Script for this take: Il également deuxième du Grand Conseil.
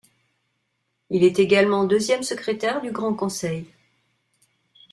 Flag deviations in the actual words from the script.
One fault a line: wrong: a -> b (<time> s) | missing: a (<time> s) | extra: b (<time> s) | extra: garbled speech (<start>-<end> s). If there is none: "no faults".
extra: est (1.2 s)
extra: secrétaire (2.2 s)